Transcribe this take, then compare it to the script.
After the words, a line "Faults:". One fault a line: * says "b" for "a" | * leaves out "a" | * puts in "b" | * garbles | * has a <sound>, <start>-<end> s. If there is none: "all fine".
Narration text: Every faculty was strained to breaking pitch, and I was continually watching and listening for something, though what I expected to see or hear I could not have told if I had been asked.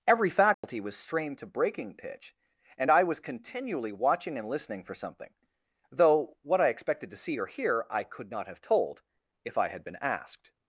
Every faculty was strained to breaking pitch, and I was continually watching and listening for something, though what I expected to see or hear I could not have told if I had been asked.
Faults:
* has a dropout, 0.5-0.6 s